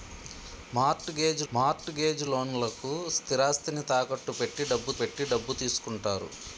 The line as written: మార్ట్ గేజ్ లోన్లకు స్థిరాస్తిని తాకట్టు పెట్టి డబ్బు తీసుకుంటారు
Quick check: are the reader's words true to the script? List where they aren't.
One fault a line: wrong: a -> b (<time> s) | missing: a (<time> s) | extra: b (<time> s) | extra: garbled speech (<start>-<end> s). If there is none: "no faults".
extra: మార్ట్ గేజ్ (1.5 s)
extra: పెట్టి డబ్బు (5.0 s)